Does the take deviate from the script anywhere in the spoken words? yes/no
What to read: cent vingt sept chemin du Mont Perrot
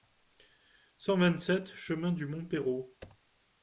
no